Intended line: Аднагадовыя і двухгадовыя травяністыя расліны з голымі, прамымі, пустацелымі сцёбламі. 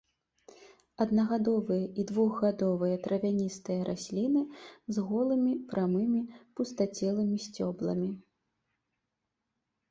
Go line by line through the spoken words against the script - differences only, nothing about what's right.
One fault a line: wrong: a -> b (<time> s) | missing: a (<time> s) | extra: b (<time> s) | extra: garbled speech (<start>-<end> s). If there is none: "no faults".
no faults